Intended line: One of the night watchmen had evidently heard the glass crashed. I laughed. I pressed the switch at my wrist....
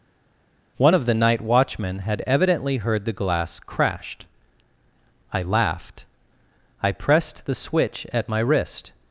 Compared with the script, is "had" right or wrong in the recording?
right